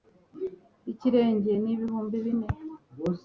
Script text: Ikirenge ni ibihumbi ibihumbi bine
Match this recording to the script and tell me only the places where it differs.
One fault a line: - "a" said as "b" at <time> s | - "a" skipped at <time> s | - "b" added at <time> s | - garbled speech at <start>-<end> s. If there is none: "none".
- "ibihumbi" skipped at 2.2 s